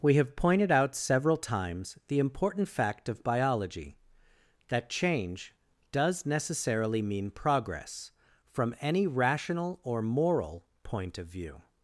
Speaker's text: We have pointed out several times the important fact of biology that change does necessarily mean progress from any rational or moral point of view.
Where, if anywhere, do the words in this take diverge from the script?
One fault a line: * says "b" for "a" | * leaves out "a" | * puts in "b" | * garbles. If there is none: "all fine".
all fine